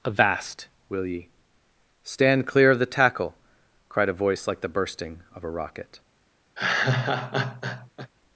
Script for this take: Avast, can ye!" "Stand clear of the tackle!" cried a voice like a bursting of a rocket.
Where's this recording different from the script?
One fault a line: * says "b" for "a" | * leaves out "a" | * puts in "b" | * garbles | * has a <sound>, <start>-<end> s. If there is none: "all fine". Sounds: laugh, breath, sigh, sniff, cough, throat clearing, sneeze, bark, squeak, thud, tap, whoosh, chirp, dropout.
* says "will" for "can"
* says "the" for "a"
* has a laugh, 6.6-8.1 s